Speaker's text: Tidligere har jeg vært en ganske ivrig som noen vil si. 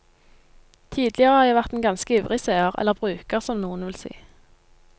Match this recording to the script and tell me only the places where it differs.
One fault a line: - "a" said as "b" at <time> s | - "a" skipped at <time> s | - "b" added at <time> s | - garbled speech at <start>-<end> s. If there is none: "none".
- "seer eller bruker" added at 2.4 s